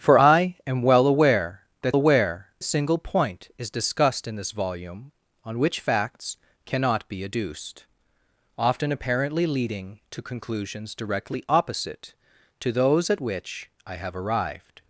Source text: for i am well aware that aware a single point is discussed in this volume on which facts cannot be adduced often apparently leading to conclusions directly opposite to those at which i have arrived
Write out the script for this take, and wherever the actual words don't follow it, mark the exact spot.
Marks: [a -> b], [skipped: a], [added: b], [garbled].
for i am well aware that aware a single point is discussed in this volume on which facts cannot be adduced often apparently leading to conclusions directly opposite to those at which i have arrived